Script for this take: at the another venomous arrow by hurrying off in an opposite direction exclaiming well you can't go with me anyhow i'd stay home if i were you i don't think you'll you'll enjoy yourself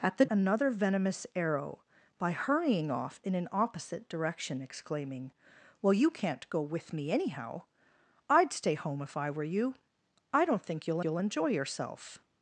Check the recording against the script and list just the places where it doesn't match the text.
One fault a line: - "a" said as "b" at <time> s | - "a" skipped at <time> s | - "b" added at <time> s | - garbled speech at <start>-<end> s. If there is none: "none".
none